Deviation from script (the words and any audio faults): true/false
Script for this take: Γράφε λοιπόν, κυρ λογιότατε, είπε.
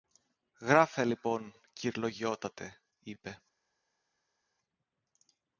false